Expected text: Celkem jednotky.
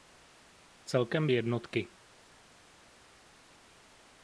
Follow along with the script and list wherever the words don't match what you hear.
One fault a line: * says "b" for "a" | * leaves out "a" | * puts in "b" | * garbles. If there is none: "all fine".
all fine